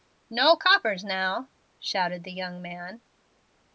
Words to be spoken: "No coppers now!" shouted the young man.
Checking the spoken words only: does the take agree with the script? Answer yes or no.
yes